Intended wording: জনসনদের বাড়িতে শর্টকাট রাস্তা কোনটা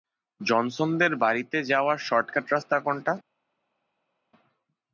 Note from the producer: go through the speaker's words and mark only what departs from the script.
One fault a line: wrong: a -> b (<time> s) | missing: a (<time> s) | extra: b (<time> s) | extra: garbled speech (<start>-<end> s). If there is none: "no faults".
extra: যাওয়ার (1.6 s)